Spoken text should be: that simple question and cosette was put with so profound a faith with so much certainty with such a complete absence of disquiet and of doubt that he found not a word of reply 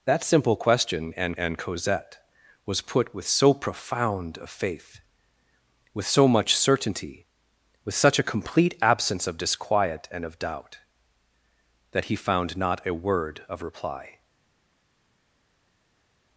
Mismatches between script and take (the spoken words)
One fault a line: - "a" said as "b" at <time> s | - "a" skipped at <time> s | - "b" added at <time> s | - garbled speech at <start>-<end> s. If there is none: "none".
- "and" added at 1.4 s